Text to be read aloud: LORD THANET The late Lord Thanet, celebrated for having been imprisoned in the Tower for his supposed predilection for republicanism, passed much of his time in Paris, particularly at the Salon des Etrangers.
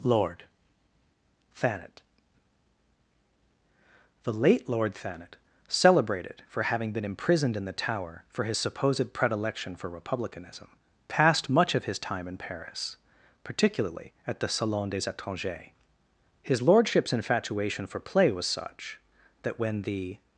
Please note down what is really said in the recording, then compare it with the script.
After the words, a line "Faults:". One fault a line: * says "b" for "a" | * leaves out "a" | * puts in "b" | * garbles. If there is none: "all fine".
LORD THANET The late Lord Thanet, celebrated for having been imprisoned in the Tower for his supposed predilection for republicanism, passed much of his time in Paris, particularly at the Salon des Etrangers. His lordship's infatuation for play was such, that when the
Faults:
* puts in "His lordship's infatuation for play was such that when the"